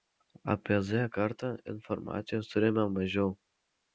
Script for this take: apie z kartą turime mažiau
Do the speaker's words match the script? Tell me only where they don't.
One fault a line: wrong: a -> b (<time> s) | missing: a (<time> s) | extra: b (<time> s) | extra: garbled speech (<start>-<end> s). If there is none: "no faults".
extra: informacijos (1.7 s)